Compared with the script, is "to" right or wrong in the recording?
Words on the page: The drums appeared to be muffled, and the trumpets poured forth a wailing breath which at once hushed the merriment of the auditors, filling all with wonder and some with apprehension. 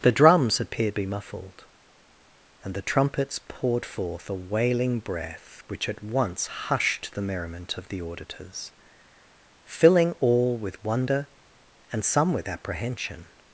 wrong